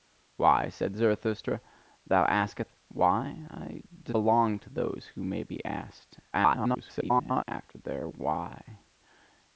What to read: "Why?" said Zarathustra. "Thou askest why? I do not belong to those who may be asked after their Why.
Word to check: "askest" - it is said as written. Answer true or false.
true